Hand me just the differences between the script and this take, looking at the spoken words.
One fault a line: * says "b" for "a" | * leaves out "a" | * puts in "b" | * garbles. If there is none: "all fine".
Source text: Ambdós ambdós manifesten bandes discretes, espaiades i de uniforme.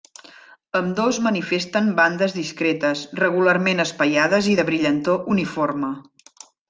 * leaves out "ambdós"
* puts in "regularment"
* puts in "brillantor"